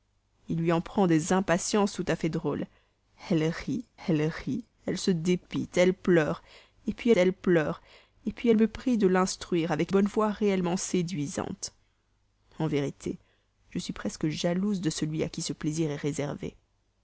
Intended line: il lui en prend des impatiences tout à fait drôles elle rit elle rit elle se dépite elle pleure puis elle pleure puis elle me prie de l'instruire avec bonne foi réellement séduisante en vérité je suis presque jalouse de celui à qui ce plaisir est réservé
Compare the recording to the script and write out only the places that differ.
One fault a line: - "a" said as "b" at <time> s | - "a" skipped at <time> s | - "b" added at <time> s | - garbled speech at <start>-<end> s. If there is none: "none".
none